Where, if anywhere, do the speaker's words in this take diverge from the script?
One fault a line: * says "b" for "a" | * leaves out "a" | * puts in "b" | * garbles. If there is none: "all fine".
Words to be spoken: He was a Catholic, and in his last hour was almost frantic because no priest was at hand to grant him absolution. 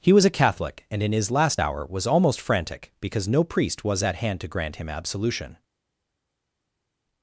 all fine